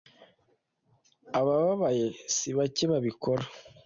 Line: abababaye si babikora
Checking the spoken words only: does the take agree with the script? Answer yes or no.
no